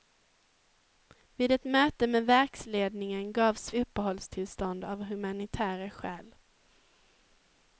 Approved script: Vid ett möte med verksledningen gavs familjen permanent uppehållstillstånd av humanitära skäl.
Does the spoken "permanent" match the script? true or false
false